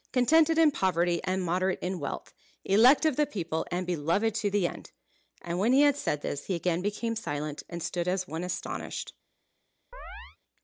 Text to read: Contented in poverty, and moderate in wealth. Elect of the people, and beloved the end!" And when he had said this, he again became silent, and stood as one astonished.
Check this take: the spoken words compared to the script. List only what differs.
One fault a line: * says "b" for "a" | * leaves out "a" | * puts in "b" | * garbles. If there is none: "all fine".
* puts in "to"